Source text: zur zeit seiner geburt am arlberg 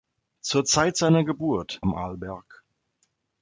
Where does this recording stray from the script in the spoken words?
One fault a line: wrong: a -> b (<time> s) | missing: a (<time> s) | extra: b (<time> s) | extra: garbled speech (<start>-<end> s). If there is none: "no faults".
no faults